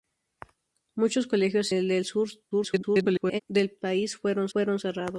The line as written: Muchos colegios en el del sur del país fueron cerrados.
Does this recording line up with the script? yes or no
no